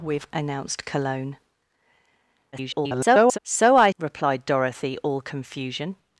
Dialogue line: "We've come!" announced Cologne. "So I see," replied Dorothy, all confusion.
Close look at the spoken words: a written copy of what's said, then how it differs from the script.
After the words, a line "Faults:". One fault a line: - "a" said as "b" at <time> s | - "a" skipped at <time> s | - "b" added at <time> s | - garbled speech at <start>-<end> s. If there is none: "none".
"We've!" announced Cologne. [garbled] "So I," replied Dorothy, all confusion.
Faults:
- "come" skipped at 0.3 s
- garbled speech at 2.5-3.4 s
- "see" skipped at 3.9 s